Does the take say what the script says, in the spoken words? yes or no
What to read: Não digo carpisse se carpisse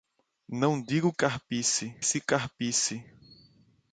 yes